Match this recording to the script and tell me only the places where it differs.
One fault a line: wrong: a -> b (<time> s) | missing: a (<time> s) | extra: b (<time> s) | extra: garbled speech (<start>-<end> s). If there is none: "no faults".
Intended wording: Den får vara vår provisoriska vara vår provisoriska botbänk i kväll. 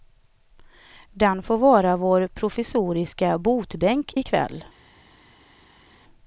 missing: vara vår provisoriska (3.4 s)